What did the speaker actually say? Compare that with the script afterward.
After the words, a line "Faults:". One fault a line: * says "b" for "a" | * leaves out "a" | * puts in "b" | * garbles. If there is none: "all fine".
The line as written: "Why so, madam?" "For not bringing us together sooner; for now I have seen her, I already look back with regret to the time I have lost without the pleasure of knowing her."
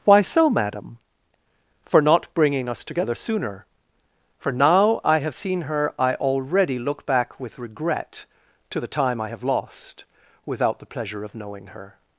"Why so, madam?" "For not bringing us together sooner; for now I have seen her, I already look back with regret to the time I have lost without the pleasure of knowing her."
Faults:
all fine